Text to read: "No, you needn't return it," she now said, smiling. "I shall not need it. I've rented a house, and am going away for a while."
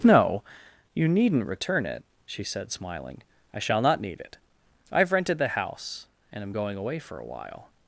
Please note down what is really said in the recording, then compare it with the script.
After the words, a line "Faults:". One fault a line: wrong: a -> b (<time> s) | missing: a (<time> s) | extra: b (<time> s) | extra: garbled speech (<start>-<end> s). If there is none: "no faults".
"No, you needn't return it," she said, smiling. "I shall not need it. I've rented the house, and am going away for a while."
Faults:
missing: now (2.4 s)
wrong: a -> the (5.4 s)